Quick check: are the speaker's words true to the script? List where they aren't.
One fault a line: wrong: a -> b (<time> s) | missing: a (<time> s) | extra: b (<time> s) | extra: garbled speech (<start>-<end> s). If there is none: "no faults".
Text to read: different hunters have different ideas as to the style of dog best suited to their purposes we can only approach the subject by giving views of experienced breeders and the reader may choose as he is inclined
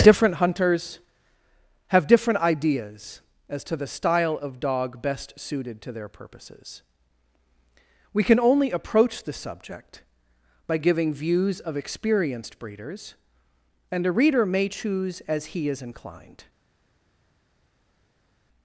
wrong: the -> a (14.1 s)